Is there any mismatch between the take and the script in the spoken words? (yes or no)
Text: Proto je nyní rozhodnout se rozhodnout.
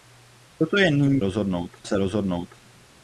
no